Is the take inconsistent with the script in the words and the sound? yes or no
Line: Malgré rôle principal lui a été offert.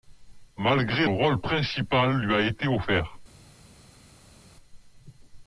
no